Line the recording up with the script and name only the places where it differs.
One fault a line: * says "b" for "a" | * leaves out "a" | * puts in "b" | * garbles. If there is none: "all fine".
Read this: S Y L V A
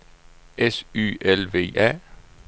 all fine